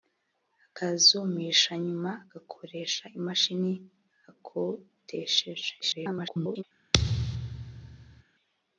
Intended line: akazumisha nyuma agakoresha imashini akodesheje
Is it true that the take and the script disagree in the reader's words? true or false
true